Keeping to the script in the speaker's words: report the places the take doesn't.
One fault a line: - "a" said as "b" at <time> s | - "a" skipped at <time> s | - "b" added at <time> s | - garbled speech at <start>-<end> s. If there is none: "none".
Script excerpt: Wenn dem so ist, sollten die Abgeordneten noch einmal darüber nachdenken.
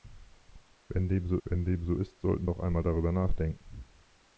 - "wenn dem so" added at 1.4 s
- "die Abgeordneten" skipped at 2.5 s